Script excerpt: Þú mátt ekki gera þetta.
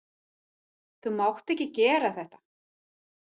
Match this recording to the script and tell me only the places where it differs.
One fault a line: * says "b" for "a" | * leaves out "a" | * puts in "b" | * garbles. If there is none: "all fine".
all fine